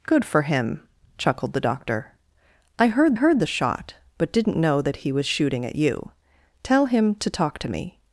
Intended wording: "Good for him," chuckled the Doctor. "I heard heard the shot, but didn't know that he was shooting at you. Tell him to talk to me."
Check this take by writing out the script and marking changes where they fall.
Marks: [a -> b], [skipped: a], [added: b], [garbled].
"Good for him," chuckled the Doctor. "I heard heard the shot, but didn't know that he was shooting at you. Tell him to talk to me."